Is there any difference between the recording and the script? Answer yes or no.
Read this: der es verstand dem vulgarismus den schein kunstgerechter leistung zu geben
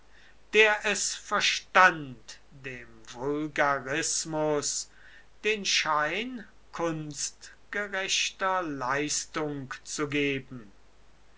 no